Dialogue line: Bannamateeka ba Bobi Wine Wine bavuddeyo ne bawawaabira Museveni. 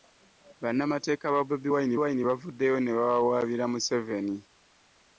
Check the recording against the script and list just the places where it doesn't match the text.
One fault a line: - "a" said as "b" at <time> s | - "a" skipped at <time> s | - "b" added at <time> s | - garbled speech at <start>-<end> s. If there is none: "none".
none